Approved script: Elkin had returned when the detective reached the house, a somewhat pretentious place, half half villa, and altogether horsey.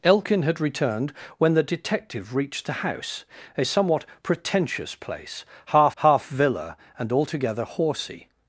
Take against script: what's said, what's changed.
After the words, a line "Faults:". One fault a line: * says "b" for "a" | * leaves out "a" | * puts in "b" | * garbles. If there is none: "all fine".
Elkin had returned when the detective reached the house, a somewhat pretentious place, half half villa, and altogether horsey.
Faults:
all fine